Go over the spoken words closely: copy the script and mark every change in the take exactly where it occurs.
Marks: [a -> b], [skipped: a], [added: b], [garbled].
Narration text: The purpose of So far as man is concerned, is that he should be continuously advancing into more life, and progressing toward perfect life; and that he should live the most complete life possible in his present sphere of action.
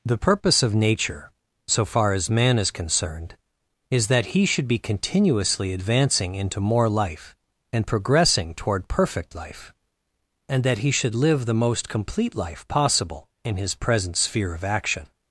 The purpose of [added: Nature] So far as man is concerned, is that he should be continuously advancing into more life, and progressing toward perfect life; and that he should live the most complete life possible in his present sphere of action.